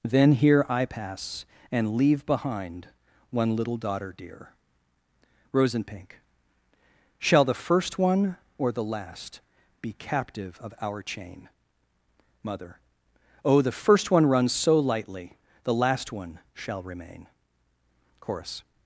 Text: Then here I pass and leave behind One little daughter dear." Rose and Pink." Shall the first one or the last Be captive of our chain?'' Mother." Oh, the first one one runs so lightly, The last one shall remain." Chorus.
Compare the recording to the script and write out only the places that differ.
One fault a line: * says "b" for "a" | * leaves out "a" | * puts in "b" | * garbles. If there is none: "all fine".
* leaves out "one"